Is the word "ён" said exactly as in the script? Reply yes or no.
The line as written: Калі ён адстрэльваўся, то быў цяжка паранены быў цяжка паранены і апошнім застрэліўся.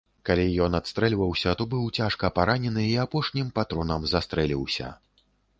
yes